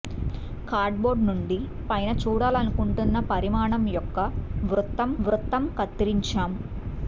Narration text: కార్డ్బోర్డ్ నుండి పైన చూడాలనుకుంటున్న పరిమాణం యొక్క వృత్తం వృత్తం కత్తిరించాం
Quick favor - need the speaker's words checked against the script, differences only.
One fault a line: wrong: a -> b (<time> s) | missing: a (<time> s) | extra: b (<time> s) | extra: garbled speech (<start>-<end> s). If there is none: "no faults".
no faults